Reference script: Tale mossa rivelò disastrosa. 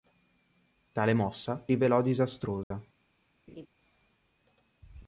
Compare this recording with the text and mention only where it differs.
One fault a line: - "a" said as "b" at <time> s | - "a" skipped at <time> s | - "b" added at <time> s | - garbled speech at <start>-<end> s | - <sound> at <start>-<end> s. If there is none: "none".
- dropout at 2.6-2.7 s
- laugh at 3.5-3.7 s